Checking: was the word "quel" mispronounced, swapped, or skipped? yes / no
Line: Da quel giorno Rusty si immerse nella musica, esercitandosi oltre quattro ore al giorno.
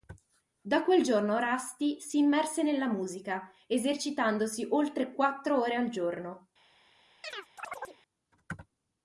no